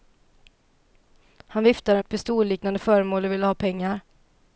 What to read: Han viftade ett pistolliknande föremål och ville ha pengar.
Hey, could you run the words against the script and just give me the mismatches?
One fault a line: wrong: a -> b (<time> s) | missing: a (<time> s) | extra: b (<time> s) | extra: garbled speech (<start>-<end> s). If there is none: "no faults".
no faults